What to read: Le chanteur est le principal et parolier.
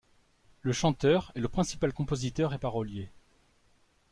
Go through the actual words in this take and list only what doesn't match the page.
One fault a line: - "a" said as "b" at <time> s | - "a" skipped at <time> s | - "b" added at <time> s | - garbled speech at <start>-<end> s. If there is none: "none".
- "compositeur" added at 1.9 s